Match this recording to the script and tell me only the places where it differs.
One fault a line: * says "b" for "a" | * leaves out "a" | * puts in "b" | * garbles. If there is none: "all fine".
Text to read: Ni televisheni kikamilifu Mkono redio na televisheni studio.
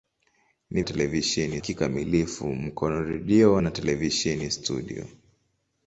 all fine